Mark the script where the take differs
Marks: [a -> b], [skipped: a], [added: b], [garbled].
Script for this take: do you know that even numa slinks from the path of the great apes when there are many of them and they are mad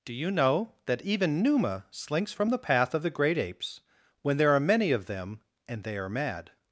do you know that even numa slinks from the path of the great apes when there are many of them and they are mad